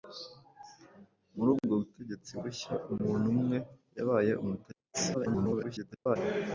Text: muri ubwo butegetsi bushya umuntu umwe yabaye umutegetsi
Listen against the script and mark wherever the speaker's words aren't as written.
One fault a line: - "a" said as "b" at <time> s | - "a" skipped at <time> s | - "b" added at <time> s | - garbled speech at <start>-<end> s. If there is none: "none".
- garbled speech at 5.1-6.2 s